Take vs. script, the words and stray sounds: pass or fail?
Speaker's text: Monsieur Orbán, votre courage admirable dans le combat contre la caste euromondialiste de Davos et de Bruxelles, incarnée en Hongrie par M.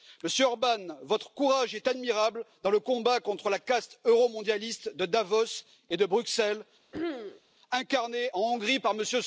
fail